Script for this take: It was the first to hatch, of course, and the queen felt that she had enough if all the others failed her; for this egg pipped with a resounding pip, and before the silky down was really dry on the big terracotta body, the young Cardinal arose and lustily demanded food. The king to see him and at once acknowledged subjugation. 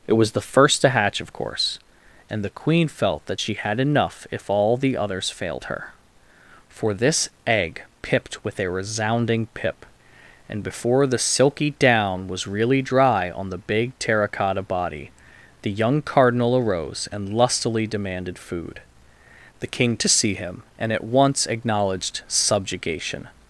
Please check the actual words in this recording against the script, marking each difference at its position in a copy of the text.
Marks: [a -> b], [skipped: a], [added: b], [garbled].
It was the first to hatch, of course, and the queen felt that she had enough if all the others failed her; for this egg pipped with a resounding pip, and before the silky down was really dry on the big terracotta body, the young Cardinal arose and lustily demanded food. The king to see him and at once acknowledged subjugation.